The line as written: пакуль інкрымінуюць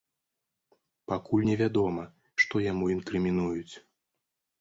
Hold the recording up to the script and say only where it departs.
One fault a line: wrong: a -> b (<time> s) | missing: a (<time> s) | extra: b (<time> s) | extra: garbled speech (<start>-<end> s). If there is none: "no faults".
extra: невядома што яму (1.5 s)